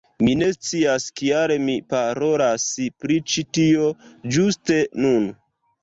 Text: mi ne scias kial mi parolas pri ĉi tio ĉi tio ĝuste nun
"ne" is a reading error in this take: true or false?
false